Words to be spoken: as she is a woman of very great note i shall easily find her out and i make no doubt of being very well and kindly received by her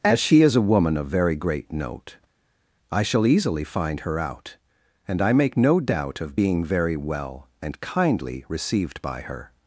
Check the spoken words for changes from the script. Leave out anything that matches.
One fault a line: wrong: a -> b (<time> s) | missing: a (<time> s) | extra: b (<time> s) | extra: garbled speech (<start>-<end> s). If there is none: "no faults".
no faults